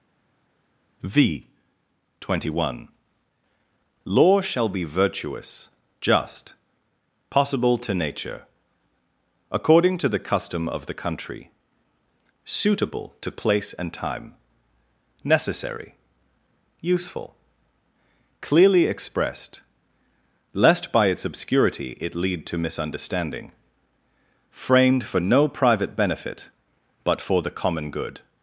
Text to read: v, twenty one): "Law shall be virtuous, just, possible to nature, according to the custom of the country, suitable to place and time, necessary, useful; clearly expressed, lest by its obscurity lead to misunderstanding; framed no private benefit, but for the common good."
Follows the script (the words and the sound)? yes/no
no